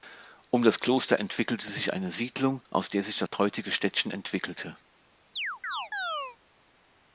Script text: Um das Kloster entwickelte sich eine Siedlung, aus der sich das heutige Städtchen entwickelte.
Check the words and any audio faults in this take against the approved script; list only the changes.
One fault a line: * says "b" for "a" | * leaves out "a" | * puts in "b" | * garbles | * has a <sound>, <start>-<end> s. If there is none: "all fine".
* has a dropout, 3.3-3.3 s
* has a chirp, 5.3-6.4 s